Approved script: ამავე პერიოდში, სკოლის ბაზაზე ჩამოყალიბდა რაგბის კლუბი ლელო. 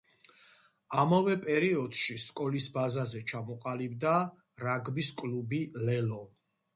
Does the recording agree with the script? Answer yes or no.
yes